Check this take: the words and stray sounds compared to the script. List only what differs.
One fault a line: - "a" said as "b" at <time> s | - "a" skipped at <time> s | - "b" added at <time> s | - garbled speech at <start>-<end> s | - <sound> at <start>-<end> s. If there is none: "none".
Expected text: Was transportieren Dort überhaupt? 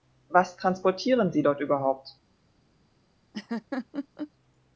- "Sie" added at 1.3 s
- laugh at 3.3-4.3 s